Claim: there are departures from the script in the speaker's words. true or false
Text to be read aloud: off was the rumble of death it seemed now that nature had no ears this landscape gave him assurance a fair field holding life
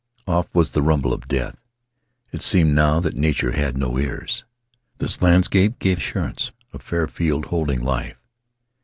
true